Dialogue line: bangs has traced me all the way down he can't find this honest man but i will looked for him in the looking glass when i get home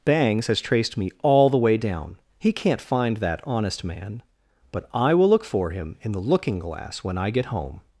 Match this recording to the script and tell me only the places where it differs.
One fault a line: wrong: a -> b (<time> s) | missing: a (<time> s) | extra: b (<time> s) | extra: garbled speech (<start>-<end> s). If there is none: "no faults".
wrong: this -> that (3.2 s)
wrong: looked -> look (5.3 s)